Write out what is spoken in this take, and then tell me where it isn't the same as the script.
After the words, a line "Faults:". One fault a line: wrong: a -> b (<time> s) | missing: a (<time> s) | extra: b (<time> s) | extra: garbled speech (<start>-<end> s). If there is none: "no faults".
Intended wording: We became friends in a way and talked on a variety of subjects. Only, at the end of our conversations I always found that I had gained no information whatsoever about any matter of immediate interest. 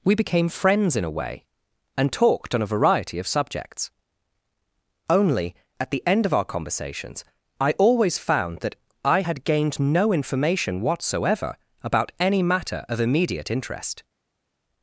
We became friends in a way and talked on a variety of subjects. Only, at the end of our conversations I always found that I had gained no information whatsoever about any matter of immediate interest.
Faults:
no faults